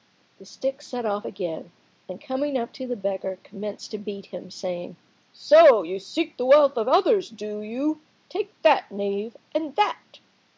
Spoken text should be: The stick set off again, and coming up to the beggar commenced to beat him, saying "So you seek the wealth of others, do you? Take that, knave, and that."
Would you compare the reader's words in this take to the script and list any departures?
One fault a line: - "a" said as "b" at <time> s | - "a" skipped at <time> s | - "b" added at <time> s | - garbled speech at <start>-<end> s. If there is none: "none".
none